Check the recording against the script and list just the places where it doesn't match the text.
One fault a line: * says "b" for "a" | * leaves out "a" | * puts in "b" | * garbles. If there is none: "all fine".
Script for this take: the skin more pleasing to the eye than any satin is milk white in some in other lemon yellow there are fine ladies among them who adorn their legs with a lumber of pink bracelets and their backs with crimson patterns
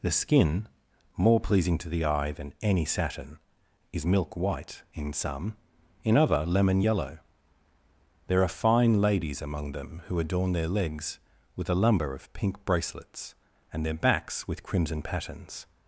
all fine